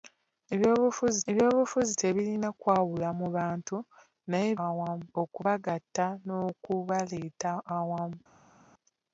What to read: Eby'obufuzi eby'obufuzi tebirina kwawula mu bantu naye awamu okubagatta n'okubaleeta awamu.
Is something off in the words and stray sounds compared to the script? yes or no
no